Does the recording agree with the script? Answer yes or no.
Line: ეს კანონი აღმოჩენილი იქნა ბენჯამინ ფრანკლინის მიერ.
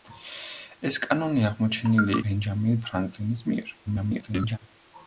no